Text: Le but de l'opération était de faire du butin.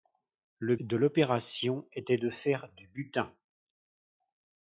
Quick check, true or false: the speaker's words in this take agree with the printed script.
false